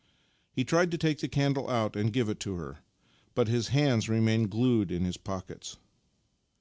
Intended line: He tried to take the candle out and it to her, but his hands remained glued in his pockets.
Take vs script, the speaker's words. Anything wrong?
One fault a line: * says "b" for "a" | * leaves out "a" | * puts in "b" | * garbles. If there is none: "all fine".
* puts in "give"